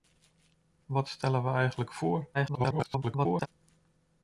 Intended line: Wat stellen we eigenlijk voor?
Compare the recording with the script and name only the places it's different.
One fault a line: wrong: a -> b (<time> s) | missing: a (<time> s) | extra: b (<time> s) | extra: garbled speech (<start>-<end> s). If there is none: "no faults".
extra: garbled speech (2.3-3.5 s)